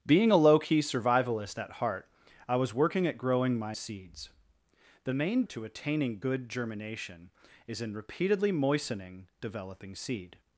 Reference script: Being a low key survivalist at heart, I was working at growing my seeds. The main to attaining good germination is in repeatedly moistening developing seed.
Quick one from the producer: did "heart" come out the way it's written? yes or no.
yes